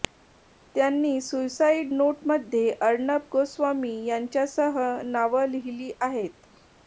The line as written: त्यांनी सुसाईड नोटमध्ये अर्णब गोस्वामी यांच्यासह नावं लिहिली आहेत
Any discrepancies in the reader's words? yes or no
no